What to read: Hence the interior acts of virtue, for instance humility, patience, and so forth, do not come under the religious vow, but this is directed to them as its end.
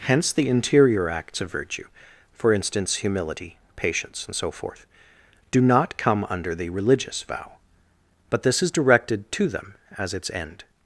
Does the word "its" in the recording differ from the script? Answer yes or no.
no